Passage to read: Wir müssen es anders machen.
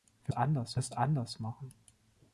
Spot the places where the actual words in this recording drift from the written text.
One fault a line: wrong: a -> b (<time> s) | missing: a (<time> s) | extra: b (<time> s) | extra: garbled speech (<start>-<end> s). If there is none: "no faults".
wrong: müssen -> anders (0.3 s)